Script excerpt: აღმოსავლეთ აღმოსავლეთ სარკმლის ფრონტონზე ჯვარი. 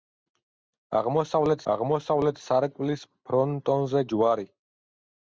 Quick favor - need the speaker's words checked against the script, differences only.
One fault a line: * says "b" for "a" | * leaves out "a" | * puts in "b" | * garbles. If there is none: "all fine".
all fine